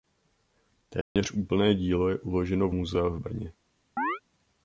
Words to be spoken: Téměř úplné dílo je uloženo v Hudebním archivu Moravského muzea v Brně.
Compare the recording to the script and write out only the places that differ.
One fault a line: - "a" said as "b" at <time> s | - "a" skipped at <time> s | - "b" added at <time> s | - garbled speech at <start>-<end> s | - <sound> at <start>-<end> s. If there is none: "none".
- dropout at 1.0-1.2 s
- "Hudebním archivu Moravského" skipped at 2.7 s
- chirp at 4.0-4.2 s